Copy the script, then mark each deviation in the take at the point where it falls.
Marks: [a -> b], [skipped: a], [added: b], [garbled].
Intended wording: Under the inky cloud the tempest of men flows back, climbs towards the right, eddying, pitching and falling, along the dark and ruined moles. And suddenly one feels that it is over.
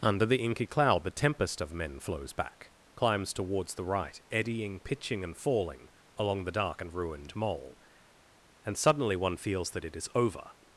Under the inky cloud the tempest of men flows back, climbs towards the right, eddying, pitching and falling, along the dark and ruined [moles. -> mole] And suddenly one feels that it is over.